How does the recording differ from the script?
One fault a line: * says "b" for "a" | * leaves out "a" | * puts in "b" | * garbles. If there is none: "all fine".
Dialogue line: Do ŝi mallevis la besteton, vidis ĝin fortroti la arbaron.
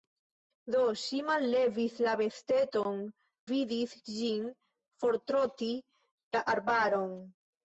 all fine